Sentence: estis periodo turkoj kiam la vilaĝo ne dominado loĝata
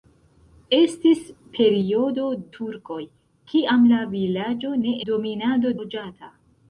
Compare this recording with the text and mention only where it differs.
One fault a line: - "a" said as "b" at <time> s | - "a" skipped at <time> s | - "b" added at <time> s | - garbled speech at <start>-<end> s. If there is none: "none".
none